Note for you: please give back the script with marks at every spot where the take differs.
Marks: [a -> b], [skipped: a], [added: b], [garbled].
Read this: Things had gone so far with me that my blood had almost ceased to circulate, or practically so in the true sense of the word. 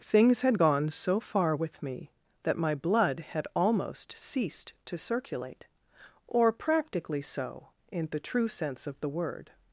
Things had gone so far with me that my blood had almost ceased to circulate, or practically so in the true sense of the word.